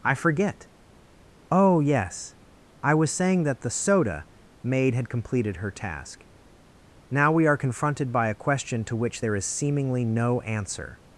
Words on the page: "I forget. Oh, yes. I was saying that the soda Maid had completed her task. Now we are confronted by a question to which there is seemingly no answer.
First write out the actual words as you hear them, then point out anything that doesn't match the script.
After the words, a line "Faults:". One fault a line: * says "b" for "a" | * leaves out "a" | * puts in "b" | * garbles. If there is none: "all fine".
"I forget. Oh, yes. I was saying that the soda Maid had completed her task. Now we are confronted by a question to which there is seemingly no answer.
Faults:
all fine